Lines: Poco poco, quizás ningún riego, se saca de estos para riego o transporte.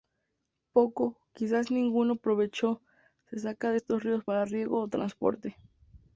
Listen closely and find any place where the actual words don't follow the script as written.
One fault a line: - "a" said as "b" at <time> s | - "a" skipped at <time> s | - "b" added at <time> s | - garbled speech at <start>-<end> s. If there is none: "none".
- "poco" skipped at 1.2 s
- "riego" said as "provecho" at 2.2 s
- "ríos" added at 4.0 s